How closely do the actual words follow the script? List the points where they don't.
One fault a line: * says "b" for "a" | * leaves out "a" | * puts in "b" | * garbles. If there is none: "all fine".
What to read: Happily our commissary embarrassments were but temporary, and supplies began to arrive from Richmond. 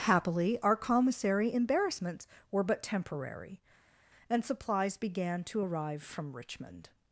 all fine